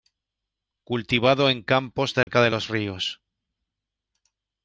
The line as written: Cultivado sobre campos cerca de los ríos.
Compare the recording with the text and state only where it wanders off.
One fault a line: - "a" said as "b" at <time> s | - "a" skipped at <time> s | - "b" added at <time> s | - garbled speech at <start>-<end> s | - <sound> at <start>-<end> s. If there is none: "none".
- "sobre" said as "en" at 1.5 s
- dropout at 2.2-2.3 s